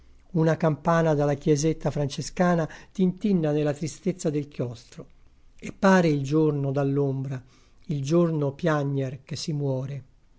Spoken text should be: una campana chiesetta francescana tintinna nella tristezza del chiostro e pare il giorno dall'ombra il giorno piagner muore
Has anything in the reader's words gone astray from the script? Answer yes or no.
yes